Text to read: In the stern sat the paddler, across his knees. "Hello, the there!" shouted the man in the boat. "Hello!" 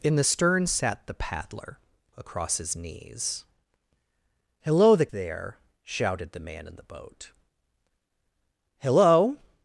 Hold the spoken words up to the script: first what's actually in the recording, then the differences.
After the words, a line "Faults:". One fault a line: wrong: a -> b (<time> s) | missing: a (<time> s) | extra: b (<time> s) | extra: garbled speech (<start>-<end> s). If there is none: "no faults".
In the stern sat the paddler, across his knees. "Hello, the there!" shouted the man in the boat. "Hello!"
Faults:
no faults